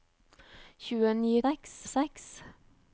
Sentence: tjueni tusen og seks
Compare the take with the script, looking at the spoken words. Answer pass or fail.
fail